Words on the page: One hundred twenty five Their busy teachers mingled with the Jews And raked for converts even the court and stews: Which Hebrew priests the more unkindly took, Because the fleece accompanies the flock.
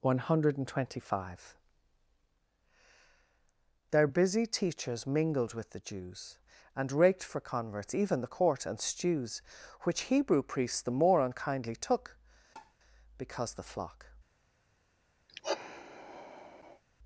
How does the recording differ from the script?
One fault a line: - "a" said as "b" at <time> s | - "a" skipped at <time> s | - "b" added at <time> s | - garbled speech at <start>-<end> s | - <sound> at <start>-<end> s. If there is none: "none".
- tap at 12.6-12.8 s
- "fleece accompanies the" skipped at 13.6 s
- sigh at 15.3-16.8 s